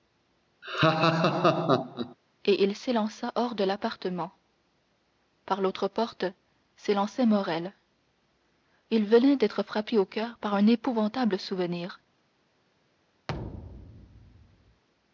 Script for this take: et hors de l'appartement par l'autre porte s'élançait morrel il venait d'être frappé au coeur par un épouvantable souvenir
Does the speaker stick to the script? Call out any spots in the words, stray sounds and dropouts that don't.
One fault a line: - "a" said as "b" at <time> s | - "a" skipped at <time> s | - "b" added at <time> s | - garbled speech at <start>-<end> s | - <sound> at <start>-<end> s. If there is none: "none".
- laugh at 0.6-2.2 s
- "il s'élança" added at 2.6 s
- thud at 13.3-14.8 s